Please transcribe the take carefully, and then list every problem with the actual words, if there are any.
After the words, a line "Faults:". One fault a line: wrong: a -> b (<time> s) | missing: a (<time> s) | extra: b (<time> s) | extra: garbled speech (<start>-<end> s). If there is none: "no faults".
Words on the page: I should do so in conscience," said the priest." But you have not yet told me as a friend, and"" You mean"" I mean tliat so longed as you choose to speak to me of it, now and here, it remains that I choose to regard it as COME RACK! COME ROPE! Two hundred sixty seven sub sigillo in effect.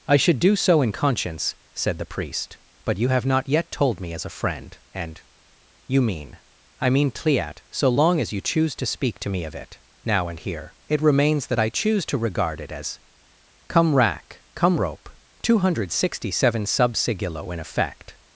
I should do so in conscience," said the priest." But you have not yet told me as a friend, and"" You mean"" I mean tliat so long as you choose to speak to me of it, now and here, it remains that I choose to regard it as COME RACK! COME ROPE! Two hundred sixty seven sub sigillo in effect.
Faults:
wrong: longed -> long (7.9 s)